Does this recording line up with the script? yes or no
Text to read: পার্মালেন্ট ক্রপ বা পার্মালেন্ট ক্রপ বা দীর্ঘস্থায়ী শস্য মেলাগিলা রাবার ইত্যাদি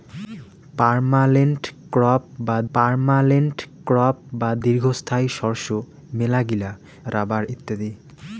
yes